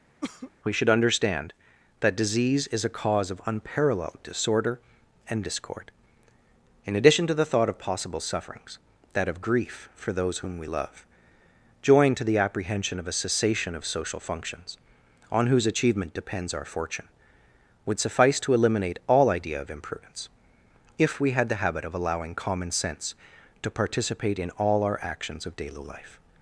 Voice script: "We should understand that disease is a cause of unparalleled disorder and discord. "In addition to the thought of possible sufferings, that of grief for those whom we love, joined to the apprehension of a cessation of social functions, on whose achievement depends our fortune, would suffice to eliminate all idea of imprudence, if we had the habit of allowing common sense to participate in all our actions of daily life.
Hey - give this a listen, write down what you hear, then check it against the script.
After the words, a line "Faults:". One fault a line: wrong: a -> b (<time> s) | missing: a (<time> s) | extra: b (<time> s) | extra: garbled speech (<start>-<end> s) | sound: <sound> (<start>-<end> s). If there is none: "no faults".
"We should understand that disease is a cause of unparalleled disorder and discord. "In addition to the thought of possible sufferings, that of grief for those whom we love, joined to the apprehension of a cessation of social functions, on whose achievement depends our fortune, would suffice to eliminate all idea of imprudence, if we had the habit of allowing common sense to participate in all our actions of daily life.
Faults:
sound: cough (0.2-0.5 s)